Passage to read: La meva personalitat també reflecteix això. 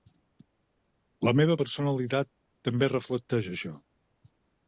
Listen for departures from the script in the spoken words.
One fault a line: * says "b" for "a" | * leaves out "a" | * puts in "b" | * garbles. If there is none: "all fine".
all fine